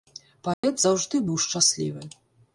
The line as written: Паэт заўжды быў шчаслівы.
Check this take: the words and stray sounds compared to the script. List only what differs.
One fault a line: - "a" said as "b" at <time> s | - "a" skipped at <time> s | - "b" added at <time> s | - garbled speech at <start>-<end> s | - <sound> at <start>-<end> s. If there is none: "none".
- dropout at 0.5-0.6 s